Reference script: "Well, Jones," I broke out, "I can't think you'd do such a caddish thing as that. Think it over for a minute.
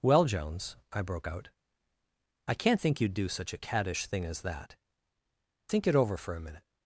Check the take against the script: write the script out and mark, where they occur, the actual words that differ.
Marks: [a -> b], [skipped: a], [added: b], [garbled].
"Well, Jones," I broke out, "I can't think you'd do such a caddish thing as that. Think it over for a minute.